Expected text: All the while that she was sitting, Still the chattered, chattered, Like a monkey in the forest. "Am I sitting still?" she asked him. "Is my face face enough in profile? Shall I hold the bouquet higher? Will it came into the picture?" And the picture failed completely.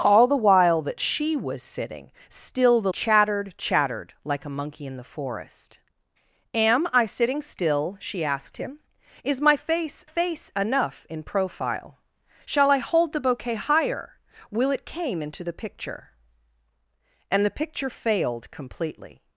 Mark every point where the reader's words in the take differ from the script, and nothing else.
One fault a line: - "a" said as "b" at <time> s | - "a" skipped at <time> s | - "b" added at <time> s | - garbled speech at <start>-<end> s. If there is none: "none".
none